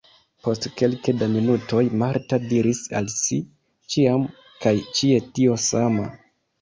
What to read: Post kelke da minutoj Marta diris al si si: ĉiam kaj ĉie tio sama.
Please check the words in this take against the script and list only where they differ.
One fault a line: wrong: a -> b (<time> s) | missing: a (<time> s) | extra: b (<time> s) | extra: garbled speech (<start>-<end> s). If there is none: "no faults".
missing: si (3.4 s)